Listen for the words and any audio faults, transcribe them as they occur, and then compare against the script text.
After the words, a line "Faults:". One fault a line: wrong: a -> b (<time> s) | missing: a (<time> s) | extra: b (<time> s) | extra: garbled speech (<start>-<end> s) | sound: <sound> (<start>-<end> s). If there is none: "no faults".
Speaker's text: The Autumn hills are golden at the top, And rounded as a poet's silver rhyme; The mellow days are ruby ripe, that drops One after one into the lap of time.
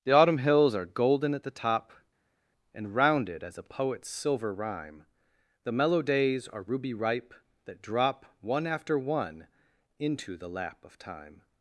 The Autumn hills are golden at the top, And rounded as a poet's silver rhyme; The mellow days are ruby ripe, that drop One after one into the lap of time.
Faults:
wrong: drops -> drop (7.8 s)